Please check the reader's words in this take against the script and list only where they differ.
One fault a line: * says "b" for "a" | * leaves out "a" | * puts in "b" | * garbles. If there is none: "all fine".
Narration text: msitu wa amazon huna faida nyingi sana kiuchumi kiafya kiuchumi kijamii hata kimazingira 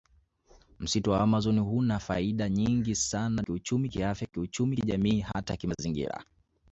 all fine